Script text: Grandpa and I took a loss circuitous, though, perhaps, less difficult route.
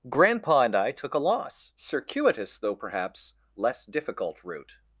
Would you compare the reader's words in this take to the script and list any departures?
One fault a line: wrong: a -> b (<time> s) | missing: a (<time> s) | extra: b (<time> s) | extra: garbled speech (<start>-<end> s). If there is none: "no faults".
no faults